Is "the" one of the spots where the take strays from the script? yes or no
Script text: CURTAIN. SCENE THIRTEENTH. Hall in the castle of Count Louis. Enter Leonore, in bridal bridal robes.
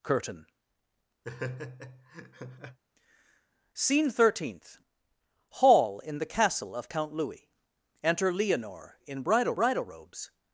no